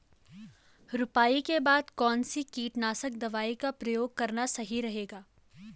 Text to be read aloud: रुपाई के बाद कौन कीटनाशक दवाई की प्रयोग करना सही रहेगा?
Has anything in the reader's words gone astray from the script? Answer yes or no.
yes